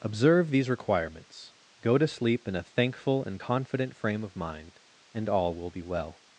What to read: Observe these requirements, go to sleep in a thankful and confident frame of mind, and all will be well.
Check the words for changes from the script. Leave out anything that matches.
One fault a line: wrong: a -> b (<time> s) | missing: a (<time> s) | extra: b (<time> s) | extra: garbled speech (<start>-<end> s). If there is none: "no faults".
no faults